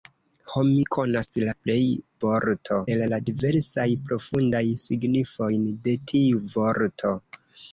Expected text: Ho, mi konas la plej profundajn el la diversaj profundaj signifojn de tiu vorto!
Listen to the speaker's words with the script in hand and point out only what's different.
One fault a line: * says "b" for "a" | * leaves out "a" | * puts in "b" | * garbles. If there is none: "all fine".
* says "vorto" for "profundajn"